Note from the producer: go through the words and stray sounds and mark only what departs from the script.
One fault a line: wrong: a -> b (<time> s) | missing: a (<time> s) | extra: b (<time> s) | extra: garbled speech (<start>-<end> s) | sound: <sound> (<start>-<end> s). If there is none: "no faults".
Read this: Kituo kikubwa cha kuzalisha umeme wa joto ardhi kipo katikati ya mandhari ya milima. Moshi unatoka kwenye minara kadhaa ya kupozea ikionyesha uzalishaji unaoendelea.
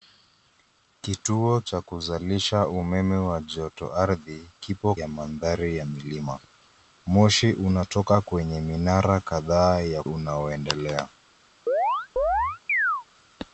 missing: kikubwa (1.6 s)
missing: katikati (4.9 s)
missing: kupozea ikionyesha uzalishaji (10.0 s)
sound: chirp (11.7-13.0 s)